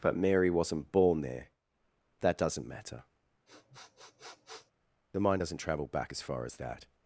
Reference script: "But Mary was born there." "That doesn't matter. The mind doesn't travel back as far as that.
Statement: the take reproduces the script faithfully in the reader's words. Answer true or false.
false